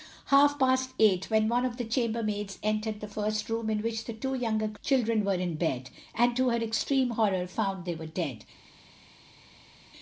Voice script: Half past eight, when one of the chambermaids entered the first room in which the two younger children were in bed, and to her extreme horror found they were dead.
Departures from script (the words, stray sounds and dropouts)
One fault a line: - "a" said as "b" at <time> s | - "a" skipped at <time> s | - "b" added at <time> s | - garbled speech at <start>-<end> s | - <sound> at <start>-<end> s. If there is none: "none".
none